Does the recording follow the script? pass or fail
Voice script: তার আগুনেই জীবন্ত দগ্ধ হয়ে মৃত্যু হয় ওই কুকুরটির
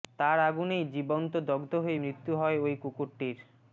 pass